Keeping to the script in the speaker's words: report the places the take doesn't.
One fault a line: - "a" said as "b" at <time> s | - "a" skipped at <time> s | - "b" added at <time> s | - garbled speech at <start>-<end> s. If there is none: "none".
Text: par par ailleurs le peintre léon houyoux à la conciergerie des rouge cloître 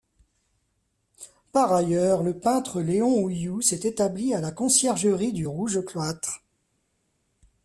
- "par" skipped at 1.7 s
- "s'est établi" added at 3.6 s
- "des" said as "du" at 5.3 s